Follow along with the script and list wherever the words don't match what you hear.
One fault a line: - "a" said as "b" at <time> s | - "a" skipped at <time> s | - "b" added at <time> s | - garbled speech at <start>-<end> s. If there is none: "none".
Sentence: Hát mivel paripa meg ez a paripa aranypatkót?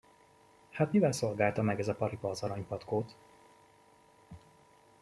- "paripa" said as "szolgálta" at 1.1 s
- "az" added at 2.3 s